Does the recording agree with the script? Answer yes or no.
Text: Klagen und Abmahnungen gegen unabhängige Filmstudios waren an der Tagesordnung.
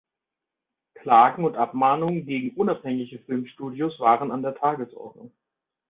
yes